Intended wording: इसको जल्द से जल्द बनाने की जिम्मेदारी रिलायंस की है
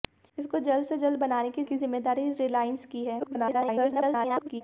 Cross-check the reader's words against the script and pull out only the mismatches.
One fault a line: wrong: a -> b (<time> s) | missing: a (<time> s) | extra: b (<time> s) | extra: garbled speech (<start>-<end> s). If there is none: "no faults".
extra: की (1.6 s)
extra: garbled speech (3.2-4.6 s)